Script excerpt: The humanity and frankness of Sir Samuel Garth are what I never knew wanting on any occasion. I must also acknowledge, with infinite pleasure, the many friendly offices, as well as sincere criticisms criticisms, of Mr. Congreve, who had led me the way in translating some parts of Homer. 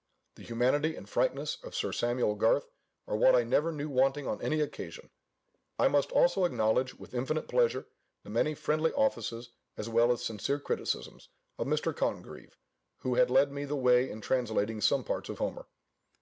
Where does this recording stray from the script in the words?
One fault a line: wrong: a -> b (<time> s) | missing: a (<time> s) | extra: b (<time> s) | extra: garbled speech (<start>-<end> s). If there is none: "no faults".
missing: criticisms (11.3 s)